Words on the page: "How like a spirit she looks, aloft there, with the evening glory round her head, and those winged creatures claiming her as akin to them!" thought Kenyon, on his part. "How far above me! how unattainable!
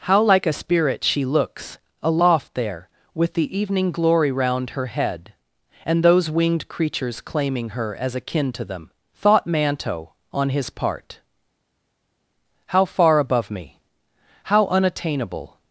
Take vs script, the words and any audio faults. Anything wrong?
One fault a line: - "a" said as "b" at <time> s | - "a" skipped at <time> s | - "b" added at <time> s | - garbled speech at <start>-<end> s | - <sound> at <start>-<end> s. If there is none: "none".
- "Kenyon" said as "Manto" at 9.5 s